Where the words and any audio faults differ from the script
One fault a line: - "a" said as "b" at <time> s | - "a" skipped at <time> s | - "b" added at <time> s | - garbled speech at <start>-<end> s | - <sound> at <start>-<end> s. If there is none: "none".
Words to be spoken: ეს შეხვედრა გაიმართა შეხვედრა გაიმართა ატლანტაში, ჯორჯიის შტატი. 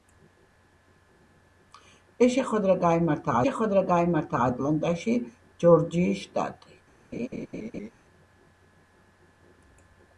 - laugh at 7.1-7.9 s